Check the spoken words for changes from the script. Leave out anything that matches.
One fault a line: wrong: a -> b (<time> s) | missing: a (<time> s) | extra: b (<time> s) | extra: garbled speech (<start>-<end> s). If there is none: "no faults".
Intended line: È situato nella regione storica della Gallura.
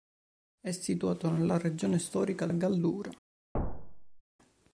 missing: della (2.5 s)